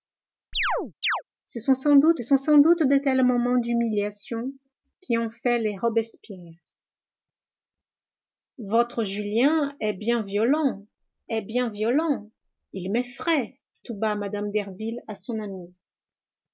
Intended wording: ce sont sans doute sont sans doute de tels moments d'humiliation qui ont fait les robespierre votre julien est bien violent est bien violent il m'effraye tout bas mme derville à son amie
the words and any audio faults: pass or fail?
fail